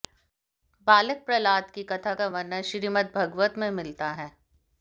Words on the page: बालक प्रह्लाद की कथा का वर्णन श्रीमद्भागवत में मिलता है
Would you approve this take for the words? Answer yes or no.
yes